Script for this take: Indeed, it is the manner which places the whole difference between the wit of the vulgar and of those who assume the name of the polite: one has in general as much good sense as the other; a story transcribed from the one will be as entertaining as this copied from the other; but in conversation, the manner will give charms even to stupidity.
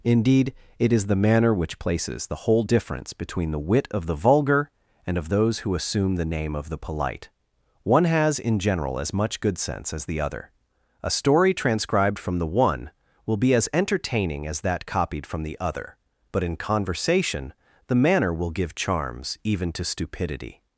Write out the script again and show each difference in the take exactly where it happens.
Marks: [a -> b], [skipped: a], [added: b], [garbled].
Indeed, it is the manner which places the whole difference between the wit of the vulgar and of those who assume the name of the polite: one has in general as much good sense as the other; a story transcribed from the one will be as entertaining as [this -> that] copied from the other; but in conversation, the manner will give charms even to stupidity.